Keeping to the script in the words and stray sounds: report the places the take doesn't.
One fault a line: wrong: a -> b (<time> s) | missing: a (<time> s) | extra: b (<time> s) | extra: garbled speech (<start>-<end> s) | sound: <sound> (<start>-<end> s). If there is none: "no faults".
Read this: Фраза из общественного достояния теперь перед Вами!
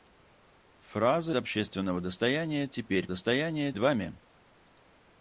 missing: из (1.4 s)
wrong: перед -> достояния (3.1 s)